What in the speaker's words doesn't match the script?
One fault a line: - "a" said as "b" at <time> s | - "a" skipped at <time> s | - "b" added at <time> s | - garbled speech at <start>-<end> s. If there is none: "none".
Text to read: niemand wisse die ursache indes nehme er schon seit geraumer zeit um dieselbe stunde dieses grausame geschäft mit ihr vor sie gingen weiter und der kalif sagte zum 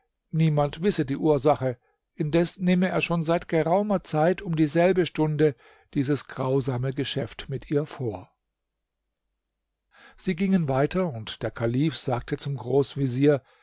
none